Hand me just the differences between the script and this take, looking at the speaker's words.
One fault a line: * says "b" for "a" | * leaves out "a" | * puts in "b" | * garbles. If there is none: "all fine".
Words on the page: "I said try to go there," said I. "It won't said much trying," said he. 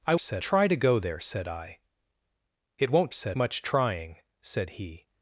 all fine